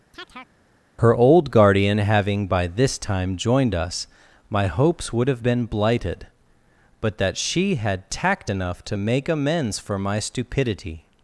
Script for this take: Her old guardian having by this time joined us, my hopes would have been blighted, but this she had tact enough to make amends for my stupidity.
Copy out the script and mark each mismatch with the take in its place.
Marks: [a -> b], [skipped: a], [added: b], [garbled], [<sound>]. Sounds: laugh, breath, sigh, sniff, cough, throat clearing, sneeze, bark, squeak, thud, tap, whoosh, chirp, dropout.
[chirp] Her old guardian having by this time joined us, my hopes would have been blighted, but [this -> that] she had tact enough to make amends for my stupidity.